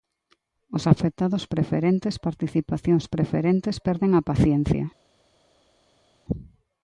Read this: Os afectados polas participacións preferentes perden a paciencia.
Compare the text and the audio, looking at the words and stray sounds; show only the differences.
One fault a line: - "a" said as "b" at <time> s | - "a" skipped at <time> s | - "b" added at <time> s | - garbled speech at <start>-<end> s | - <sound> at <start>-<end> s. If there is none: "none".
- "polas" said as "preferentes" at 1.5 s